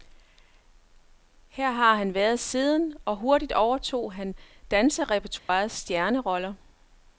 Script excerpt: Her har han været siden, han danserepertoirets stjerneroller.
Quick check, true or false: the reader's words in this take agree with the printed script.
false